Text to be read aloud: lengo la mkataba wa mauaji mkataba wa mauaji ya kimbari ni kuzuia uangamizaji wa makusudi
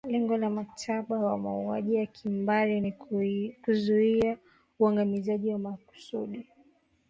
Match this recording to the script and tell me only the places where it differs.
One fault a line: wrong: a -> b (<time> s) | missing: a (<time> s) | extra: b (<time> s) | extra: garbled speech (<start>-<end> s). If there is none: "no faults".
missing: mkataba wa mauaji (1.9 s)